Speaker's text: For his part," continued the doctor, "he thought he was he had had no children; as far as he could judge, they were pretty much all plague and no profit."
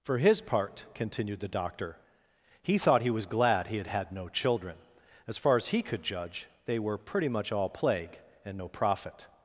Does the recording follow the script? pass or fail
fail